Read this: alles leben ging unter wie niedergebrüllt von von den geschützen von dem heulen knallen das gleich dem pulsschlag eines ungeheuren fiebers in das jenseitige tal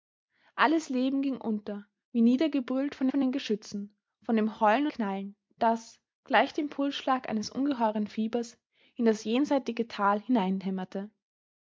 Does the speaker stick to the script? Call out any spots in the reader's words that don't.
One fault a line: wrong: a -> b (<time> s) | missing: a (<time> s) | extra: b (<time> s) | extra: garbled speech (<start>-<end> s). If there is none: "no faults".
no faults